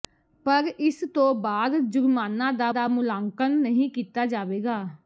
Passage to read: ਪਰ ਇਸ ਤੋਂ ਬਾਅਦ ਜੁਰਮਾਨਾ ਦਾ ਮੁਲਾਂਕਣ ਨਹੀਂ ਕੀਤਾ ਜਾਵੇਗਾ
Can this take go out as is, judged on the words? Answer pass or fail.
fail